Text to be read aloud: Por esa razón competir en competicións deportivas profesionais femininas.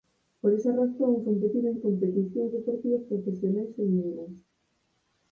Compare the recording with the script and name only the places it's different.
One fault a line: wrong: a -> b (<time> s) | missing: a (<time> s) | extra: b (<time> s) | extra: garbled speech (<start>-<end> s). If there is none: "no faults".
no faults